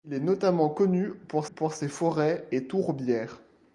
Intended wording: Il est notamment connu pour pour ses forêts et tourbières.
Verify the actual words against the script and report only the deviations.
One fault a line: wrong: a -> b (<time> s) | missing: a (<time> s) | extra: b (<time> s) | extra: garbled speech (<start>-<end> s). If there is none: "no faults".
no faults